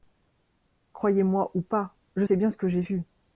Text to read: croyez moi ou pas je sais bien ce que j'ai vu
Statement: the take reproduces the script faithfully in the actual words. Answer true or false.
true